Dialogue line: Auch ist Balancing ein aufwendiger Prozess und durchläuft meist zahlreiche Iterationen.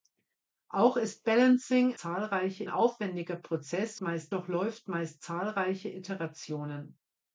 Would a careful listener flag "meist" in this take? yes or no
no